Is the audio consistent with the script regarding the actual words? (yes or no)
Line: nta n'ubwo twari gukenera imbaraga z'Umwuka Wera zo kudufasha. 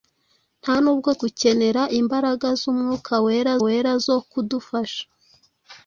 no